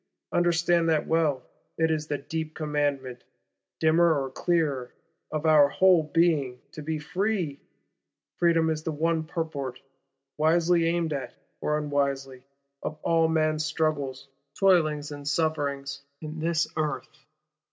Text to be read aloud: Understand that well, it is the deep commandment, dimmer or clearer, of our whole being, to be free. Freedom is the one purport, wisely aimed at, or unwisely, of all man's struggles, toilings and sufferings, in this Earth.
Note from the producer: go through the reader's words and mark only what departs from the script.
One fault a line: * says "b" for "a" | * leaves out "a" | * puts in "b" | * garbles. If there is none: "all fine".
all fine